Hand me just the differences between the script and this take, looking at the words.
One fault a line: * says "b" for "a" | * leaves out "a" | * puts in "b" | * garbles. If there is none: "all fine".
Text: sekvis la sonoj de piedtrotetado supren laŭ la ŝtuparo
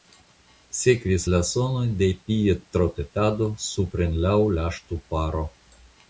all fine